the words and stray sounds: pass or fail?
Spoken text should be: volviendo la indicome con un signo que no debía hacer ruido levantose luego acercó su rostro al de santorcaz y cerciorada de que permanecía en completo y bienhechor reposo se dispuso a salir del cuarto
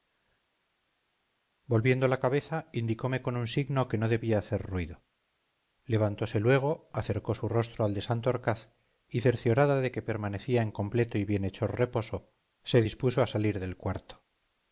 fail